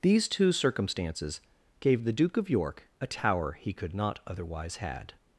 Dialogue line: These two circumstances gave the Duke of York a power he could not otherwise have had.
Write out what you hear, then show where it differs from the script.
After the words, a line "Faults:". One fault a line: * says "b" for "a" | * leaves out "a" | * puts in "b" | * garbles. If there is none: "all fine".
These two circumstances gave the Duke of York a tower he could not otherwise had.
Faults:
* says "tower" for "power"
* leaves out "have"